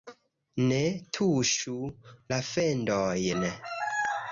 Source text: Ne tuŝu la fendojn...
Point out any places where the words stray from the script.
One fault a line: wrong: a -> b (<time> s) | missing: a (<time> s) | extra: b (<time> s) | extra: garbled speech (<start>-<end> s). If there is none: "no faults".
no faults